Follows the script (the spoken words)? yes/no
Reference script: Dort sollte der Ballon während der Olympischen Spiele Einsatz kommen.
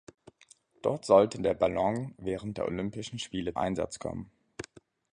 yes